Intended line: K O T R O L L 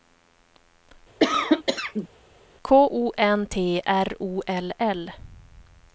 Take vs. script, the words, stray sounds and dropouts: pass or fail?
fail